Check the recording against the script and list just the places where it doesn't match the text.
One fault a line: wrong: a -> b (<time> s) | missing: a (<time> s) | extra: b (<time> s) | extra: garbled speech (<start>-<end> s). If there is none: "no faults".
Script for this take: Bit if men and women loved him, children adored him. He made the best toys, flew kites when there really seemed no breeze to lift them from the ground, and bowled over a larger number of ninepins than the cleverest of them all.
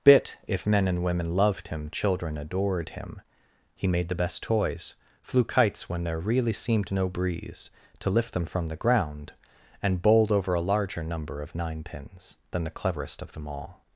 no faults